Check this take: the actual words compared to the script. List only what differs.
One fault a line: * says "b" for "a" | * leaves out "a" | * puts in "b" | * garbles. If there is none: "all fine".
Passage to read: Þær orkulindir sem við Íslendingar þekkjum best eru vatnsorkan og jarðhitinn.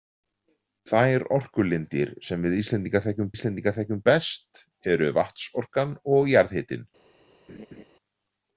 * puts in "Íslendingar þekkjum"